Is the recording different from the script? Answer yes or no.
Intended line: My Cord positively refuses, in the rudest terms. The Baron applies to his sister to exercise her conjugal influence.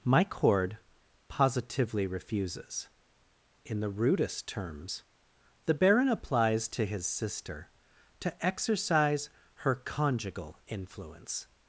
no